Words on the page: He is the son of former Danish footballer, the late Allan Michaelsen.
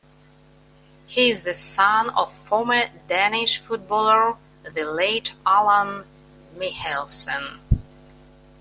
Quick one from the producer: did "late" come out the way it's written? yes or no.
yes